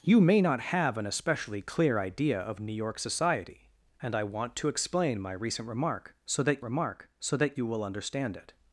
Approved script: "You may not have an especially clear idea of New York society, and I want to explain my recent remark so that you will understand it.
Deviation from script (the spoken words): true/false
true